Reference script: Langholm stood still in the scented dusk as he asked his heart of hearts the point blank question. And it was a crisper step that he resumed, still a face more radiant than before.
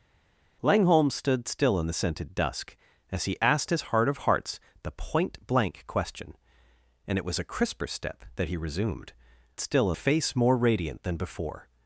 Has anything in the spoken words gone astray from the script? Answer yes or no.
no